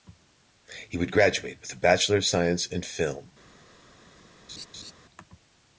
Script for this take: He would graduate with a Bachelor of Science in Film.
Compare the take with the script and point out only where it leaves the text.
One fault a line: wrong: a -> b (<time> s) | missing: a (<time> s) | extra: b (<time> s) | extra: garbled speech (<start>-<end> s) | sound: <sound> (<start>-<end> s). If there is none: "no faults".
sound: laugh (4.5-4.9 s)